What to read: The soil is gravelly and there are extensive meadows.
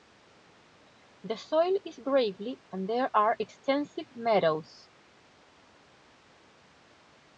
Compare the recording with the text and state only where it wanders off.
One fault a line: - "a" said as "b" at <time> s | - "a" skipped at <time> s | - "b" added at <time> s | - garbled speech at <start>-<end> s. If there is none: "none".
none